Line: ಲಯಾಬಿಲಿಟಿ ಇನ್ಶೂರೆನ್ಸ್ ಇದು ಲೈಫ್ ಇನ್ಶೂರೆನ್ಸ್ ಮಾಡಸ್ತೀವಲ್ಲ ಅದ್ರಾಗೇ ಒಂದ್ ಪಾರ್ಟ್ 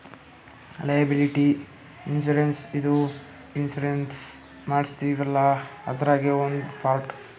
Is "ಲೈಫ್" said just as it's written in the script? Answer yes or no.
no